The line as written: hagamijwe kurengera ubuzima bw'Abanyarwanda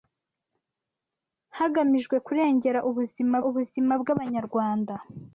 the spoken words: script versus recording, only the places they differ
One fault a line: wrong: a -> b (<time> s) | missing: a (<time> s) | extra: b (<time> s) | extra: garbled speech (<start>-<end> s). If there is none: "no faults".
extra: ubuzima (3.5 s)